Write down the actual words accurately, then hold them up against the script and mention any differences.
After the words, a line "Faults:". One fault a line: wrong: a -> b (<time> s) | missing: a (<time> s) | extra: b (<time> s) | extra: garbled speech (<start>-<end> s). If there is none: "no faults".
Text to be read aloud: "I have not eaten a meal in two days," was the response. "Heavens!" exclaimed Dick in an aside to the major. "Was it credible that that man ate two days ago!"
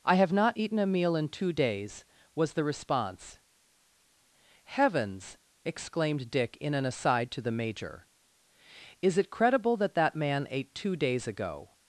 "I have not eaten a meal in two days," was the response. "Heavens!" exclaimed Dick in an aside to the major. "Is it credible that that man ate two days ago!"
Faults:
wrong: Was -> Is (9.0 s)